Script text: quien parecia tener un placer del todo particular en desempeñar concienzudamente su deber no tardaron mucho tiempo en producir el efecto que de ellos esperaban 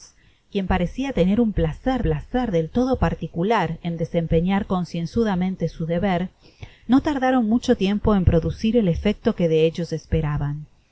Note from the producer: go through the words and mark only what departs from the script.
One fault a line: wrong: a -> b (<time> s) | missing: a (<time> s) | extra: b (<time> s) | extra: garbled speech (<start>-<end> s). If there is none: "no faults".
extra: placer (2.0 s)